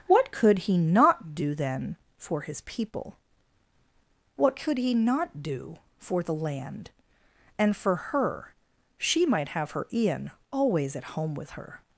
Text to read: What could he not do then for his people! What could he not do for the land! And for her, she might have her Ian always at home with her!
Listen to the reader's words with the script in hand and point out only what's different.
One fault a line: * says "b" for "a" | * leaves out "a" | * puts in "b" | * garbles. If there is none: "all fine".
all fine